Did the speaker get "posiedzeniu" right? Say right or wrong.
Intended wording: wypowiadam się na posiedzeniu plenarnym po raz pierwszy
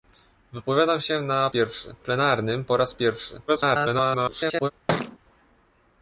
wrong